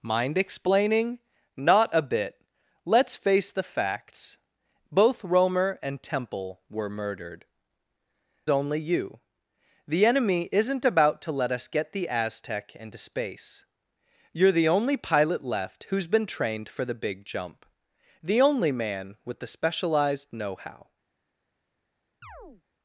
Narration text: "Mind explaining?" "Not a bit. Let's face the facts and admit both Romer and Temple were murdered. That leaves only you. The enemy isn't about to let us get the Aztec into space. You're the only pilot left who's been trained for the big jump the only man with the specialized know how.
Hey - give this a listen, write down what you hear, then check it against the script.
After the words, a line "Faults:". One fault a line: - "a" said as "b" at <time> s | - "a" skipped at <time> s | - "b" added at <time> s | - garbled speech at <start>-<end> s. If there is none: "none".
"Mind explaining?" "Not a bit. Let's face the facts both Romer and Temple were murdered. Only you. The enemy isn't about to let us get the Aztec into space. You're the only pilot left who's been trained for the big jump the only man with the specialized know how.
Faults:
- "and admit" skipped at 4.4 s
- "That leaves" skipped at 7.5 s